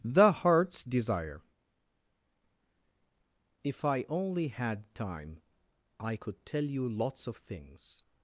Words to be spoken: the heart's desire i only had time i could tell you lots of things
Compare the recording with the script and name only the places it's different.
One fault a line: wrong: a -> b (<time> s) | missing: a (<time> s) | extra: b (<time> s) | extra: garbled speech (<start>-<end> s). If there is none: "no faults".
extra: if (3.6 s)